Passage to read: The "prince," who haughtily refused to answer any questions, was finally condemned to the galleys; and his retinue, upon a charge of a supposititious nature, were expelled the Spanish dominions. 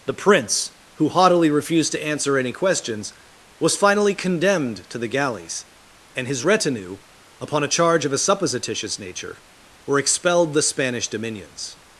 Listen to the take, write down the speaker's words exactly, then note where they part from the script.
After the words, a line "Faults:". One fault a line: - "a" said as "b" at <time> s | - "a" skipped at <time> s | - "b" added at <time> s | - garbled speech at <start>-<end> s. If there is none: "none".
The "prince," who haughtily refused to answer any questions, was finally condemned to the galleys; and his retinue, upon a charge of a supposititious nature, were expelled the Spanish dominions.
Faults:
none